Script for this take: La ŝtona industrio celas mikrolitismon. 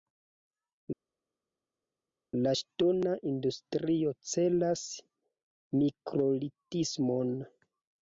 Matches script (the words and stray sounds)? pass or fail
pass